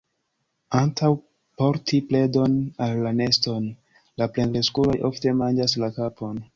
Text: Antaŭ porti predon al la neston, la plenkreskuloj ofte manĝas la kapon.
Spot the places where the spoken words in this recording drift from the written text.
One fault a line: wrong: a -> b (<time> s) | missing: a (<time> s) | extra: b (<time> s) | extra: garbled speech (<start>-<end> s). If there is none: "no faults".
no faults